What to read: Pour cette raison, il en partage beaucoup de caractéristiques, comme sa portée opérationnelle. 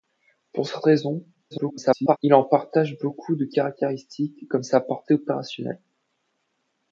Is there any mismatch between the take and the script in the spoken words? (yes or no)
yes